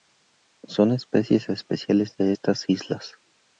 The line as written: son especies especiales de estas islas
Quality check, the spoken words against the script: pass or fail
pass